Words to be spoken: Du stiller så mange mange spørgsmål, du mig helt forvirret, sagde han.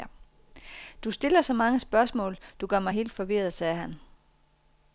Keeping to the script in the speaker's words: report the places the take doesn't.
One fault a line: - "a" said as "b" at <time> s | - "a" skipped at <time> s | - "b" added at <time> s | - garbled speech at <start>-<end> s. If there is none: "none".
- "mange" skipped at 1.8 s
- "gør" added at 2.7 s